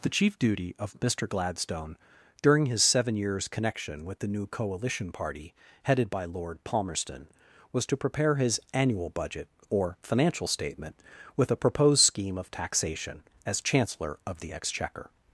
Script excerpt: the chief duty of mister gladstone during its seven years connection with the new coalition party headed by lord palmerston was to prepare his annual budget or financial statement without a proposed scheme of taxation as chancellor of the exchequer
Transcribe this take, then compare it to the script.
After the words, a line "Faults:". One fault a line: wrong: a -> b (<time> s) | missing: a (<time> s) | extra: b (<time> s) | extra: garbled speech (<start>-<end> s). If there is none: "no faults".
the chief duty of mister gladstone during his seven years connection with the new coalition party headed by lord palmerston was to prepare his annual budget or financial statement with a proposed scheme of taxation as chancellor of the exchequer
Faults:
wrong: its -> his (2.6 s)
wrong: without -> with (11.4 s)